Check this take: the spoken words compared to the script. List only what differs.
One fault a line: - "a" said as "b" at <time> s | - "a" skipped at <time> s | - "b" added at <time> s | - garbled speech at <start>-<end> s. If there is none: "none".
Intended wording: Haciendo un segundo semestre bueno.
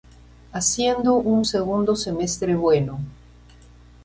none